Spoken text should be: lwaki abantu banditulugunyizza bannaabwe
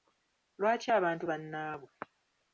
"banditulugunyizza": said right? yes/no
no